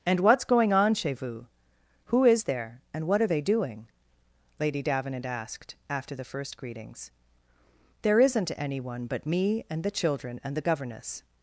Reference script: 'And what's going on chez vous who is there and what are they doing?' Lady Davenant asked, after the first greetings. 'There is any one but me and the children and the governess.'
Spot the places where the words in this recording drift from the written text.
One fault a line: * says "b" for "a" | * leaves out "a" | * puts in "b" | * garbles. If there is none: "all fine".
* says "isn't" for "is"